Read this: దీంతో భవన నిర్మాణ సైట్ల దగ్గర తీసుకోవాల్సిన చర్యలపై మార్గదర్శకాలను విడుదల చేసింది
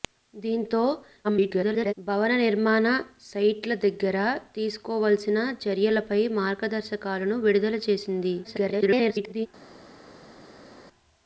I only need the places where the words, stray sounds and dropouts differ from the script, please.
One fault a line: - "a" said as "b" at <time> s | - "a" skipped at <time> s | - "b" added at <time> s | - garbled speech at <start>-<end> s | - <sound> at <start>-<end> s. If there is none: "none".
- garbled speech at 1.2-1.9 s
- garbled speech at 8.4-9.5 s